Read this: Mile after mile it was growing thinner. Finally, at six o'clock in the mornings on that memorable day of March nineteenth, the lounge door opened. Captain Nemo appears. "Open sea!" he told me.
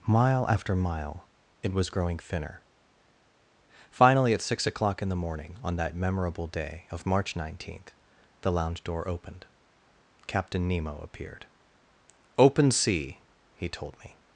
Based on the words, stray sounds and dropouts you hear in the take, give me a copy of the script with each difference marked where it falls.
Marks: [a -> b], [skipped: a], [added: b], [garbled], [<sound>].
Mile after mile it was growing thinner. Finally, at six o'clock in the [mornings -> morning] on that memorable day of March nineteenth, the lounge door opened. Captain Nemo [appears. -> appeared] "Open sea!" he told me.